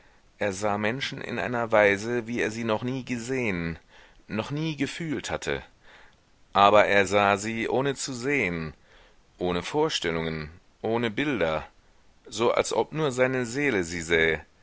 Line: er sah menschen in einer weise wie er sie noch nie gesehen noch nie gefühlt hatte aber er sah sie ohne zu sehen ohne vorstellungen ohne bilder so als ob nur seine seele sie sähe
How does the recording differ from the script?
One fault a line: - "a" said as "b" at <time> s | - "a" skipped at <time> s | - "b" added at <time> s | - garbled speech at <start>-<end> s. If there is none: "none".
none